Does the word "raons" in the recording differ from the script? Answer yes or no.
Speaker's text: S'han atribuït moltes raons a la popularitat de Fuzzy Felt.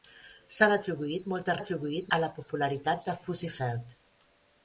yes